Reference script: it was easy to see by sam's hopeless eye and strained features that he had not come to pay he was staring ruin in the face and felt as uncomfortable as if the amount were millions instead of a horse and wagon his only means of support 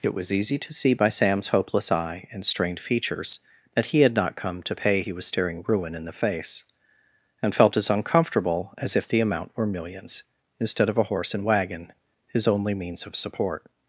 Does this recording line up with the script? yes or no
yes